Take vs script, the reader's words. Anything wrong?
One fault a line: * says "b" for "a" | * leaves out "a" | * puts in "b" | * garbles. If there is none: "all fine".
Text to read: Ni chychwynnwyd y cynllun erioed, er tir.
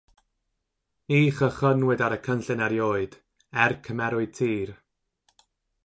* puts in "ar"
* puts in "cymerwyd"